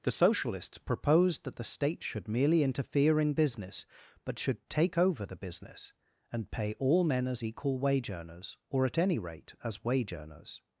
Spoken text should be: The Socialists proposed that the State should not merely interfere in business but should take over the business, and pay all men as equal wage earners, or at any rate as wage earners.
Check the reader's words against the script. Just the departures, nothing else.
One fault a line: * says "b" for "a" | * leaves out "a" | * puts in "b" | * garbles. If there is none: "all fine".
* leaves out "not"